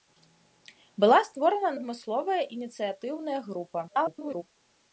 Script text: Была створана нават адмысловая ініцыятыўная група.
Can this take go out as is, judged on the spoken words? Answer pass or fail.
fail